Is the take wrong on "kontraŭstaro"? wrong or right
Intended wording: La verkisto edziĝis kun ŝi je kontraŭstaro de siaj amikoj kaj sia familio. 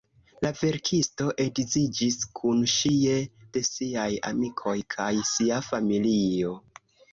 wrong